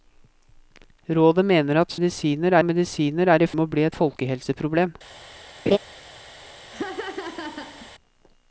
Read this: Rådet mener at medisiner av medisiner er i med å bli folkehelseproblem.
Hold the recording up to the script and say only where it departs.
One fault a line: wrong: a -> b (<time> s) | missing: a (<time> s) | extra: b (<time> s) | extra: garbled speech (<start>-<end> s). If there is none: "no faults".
no faults